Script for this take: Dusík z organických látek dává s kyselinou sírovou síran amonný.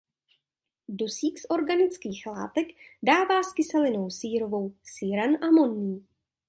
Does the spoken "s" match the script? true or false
true